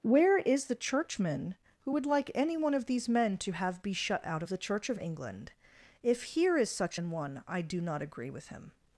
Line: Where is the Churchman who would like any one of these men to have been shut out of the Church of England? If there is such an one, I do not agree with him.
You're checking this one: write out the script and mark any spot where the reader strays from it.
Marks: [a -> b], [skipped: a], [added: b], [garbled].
Where is the Churchman who would like any one of these men to have [been -> be] shut out of the Church of England? If [there -> here] is such an one, I do not agree with him.